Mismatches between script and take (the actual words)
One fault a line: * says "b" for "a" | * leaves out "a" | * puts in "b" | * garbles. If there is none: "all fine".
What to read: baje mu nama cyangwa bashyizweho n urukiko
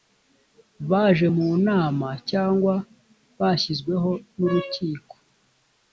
all fine